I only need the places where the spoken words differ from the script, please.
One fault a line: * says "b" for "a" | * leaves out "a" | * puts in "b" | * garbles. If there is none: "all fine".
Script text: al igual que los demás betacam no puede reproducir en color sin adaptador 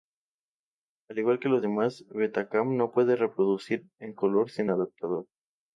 all fine